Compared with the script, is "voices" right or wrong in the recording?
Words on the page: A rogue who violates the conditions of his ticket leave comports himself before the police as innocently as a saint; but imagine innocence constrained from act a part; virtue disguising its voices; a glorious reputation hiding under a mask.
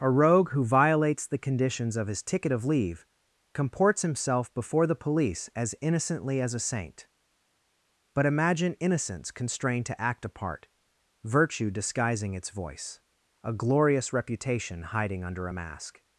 wrong